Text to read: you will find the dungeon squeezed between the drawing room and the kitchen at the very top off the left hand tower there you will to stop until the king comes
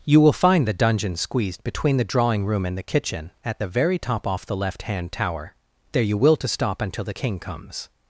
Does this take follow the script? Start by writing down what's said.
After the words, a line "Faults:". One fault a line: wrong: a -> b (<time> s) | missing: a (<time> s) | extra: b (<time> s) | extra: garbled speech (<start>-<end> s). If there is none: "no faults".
you will find the dungeon squeezed between the drawing room and the kitchen at the very top off the left hand tower there you will to stop until the king comes
Faults:
no faults